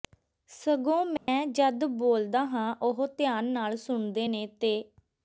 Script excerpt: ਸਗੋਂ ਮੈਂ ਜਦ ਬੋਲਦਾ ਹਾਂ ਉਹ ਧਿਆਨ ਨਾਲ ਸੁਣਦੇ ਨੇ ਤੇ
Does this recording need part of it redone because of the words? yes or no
no